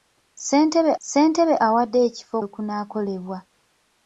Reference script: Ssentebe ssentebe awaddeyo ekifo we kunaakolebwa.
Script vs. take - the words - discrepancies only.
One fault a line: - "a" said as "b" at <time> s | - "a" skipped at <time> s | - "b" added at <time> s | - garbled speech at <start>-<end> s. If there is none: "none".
none